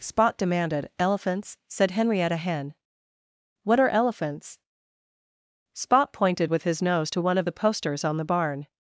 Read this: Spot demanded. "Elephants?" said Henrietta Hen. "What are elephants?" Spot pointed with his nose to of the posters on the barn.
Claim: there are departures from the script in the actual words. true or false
true